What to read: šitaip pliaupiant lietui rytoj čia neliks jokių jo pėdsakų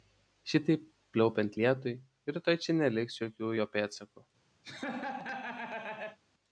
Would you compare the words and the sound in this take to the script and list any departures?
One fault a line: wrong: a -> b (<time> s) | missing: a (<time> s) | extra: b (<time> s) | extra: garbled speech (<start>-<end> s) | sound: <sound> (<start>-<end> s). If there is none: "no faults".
sound: laugh (4.6-6.2 s)